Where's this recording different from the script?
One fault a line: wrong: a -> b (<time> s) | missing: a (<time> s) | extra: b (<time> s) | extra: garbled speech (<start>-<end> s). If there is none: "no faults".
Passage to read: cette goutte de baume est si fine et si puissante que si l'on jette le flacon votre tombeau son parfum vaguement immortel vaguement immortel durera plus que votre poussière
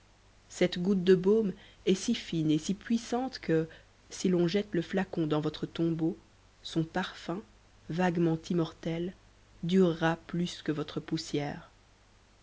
extra: dans (5.3 s)
missing: vaguement immortel (9.1 s)